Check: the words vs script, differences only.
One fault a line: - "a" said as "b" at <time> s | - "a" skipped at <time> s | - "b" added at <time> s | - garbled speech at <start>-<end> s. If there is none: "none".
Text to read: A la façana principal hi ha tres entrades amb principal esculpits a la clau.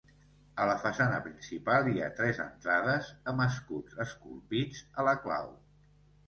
- "principal" said as "escuts" at 3.5 s